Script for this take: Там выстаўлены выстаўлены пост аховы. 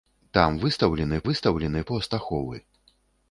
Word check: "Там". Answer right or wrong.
right